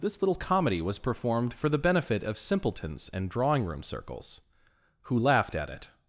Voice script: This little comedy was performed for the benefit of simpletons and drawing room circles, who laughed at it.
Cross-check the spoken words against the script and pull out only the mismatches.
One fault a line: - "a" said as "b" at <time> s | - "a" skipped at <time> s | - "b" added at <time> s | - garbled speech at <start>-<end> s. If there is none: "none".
none